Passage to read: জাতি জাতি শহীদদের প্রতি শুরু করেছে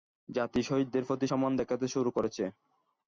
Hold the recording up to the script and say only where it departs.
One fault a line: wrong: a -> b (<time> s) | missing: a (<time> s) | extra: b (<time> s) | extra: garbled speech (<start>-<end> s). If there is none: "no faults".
missing: জাতি (0.6 s)
extra: সম্মান দেখাতে (1.3 s)